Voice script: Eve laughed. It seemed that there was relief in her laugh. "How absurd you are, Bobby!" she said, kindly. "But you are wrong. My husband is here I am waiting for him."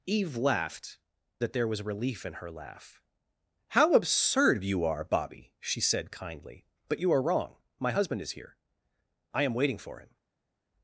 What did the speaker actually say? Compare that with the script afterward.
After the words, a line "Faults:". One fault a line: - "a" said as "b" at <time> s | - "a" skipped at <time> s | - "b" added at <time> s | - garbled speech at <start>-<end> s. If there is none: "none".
Eve laughed. That there was relief in her laugh. "How absurd you are, Bobby!" she said, kindly. "But you are wrong. My husband is here I am waiting for him."
Faults:
- "It seemed" skipped at 1.0 s